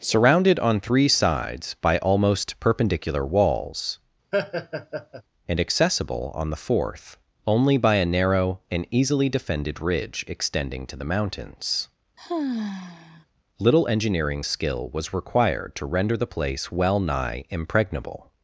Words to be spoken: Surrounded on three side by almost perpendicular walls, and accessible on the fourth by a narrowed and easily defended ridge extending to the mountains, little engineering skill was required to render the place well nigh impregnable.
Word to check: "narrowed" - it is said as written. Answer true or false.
false